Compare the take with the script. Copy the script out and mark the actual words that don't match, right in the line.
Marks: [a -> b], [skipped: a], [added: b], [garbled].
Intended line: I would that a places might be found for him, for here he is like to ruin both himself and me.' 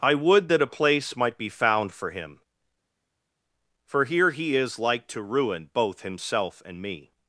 I would that a [places -> place] might be found for him, for here he is like to ruin both himself and me.'